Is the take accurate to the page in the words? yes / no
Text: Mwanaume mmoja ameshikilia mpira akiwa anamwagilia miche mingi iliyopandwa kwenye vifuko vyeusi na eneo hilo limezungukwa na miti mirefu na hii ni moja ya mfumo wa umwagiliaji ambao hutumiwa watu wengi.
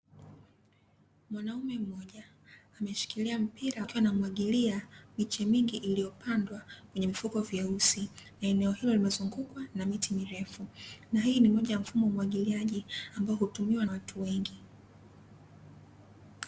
yes